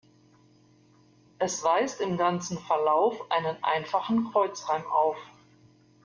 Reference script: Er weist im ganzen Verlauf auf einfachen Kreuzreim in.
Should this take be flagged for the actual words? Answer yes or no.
yes